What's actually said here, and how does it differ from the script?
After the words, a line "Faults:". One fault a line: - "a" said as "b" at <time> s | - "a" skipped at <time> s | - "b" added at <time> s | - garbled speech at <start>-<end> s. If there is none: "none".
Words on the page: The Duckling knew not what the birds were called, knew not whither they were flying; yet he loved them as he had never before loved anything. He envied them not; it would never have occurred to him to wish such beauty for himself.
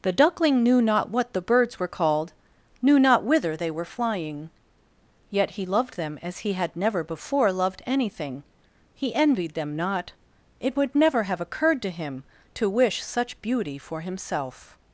The Duckling knew not what the birds were called, knew not whither they were flying; yet he loved them as he had never before loved anything. He envied them not; it would never have occurred to him to wish such beauty for himself.
Faults:
none